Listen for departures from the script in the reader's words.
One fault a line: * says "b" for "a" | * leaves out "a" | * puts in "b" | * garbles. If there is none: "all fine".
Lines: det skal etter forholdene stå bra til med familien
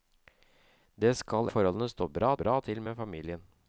* leaves out "etter"
* puts in "bra"